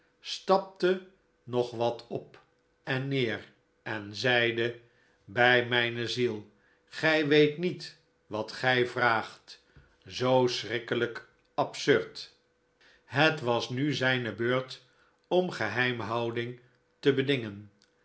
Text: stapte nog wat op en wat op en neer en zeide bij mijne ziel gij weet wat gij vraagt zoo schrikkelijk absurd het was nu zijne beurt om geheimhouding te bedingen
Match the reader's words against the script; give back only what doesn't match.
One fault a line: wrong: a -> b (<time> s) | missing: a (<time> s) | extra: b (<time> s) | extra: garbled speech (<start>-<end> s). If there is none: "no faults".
missing: wat op en (3.1 s)
extra: niet (7.6 s)